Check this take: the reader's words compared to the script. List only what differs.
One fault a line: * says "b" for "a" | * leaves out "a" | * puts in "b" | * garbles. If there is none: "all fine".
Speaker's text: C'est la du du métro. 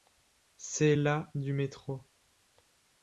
* leaves out "du"